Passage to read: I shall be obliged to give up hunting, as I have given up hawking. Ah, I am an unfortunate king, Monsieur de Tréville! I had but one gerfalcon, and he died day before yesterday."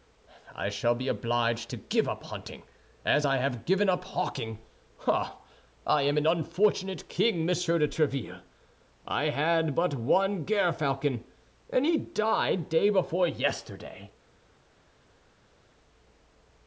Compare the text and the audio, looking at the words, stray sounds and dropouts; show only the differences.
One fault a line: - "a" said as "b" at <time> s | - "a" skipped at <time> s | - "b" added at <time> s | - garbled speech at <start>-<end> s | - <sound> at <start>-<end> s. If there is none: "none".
none